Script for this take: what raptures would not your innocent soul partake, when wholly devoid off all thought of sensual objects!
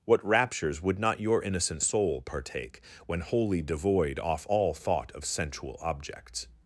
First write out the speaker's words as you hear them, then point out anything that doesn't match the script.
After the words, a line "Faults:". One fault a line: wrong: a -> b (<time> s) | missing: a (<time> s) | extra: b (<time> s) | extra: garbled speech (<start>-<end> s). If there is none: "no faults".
what raptures would not your innocent soul partake, when wholly devoid off all thought of sensual objects!
Faults:
no faults